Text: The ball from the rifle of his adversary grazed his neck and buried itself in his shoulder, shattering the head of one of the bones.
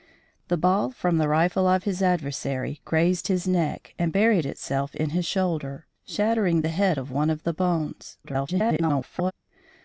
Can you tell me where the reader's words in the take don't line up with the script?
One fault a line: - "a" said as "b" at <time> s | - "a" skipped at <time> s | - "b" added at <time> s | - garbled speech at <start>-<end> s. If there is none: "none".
- garbled speech at 8.2-9.3 s